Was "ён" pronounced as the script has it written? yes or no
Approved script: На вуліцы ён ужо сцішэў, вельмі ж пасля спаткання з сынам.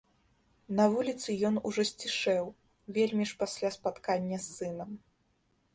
yes